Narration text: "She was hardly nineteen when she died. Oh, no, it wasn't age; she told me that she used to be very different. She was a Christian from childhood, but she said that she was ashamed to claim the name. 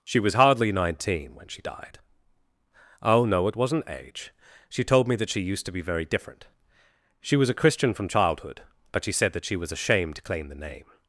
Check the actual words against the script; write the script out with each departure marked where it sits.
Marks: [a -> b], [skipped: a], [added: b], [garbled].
"She was hardly nineteen when she died. Oh, no, it wasn't age; she told me that she used to be very different. She was a Christian from childhood, but she said that she was ashamed to claim the name.